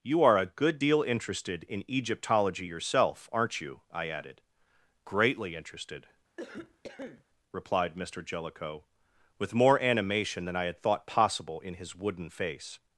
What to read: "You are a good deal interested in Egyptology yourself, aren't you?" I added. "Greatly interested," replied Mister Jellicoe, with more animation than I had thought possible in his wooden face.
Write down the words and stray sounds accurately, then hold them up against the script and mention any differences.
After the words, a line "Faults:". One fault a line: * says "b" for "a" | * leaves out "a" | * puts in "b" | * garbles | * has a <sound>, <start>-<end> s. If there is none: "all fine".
"You are a good deal interested in Egyptology yourself, aren't you?" I added. "Greatly interested," replied Mister Jellicoe, with more animation than I had thought possible in his wooden face.
Faults:
* has a cough, 6.4-7.2 s